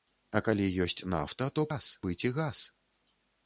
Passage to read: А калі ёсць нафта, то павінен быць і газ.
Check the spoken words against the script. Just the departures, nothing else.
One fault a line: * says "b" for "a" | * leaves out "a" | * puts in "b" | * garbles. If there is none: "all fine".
* says "газ" for "павінен"